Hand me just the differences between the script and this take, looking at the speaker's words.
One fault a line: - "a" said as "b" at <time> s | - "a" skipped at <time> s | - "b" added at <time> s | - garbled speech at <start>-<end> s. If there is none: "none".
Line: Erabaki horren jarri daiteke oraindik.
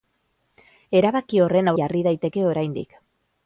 none